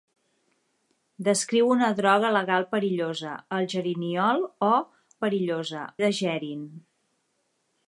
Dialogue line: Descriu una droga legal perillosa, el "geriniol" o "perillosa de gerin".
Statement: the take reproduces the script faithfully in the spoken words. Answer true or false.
true